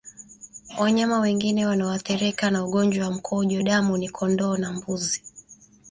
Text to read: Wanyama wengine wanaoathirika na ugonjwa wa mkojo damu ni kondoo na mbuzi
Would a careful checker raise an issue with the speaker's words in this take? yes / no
no